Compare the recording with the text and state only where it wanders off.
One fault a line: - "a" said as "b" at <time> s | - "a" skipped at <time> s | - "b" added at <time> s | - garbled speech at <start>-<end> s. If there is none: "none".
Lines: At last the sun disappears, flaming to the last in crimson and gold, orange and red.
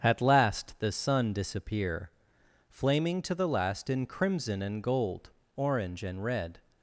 - "disappears" said as "disappear" at 1.3 s